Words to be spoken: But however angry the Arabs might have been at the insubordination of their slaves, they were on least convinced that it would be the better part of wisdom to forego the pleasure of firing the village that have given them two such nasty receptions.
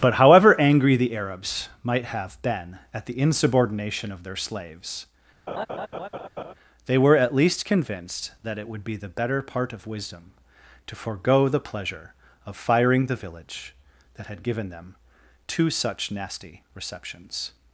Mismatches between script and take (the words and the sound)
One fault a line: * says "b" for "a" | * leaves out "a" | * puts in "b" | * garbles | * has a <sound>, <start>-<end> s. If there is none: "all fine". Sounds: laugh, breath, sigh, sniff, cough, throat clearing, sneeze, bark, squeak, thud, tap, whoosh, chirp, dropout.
* has a laugh, 5.5-6.5 s
* says "at" for "on"
* says "had" for "have"